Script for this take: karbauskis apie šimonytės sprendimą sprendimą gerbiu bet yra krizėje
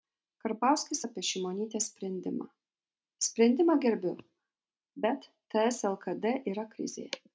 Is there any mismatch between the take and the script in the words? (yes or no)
yes